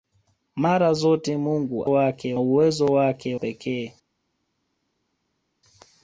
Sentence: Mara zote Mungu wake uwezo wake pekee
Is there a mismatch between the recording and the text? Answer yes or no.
no